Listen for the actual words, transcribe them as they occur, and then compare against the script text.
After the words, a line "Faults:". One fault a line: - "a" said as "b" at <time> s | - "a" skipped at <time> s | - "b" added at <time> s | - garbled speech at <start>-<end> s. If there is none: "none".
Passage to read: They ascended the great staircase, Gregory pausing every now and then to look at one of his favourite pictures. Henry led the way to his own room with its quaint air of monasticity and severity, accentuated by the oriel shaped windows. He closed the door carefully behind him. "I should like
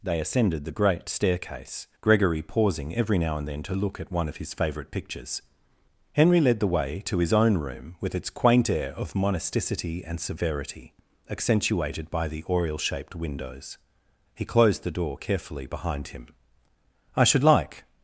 They ascended the great staircase, Gregory pausing every now and then to look at one of his favourite pictures. Henry led the way to his own room with its quaint air of monasticity and severity, accentuated by the oriel shaped windows. He closed the door carefully behind him. "I should like
Faults:
none